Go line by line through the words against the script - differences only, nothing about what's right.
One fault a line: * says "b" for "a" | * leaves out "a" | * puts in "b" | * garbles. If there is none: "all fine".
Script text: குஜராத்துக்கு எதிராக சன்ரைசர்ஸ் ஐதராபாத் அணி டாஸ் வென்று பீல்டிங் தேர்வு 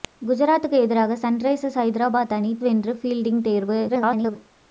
* leaves out "டாஸ்"
* garbles